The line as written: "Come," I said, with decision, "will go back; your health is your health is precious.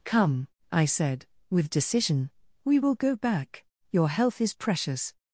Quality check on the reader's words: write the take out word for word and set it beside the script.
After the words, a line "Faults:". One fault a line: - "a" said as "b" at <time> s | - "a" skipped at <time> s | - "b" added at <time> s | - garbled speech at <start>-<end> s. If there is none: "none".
"Come," I said, with decision, "we will go back; your health is precious.
Faults:
- "we" added at 2.6 s
- "your health is" skipped at 4.5 s